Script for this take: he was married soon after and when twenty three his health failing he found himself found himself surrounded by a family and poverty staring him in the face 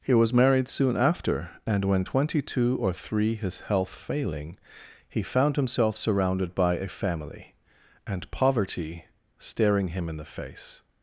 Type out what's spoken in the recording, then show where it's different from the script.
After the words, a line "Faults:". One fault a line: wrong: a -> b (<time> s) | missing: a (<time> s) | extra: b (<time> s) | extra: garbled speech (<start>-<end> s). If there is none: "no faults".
he was married soon after and when twenty two or three his health failing he found himself surrounded by a family and poverty staring him in the face
Faults:
extra: two or (2.4 s)
missing: found himself (6.0 s)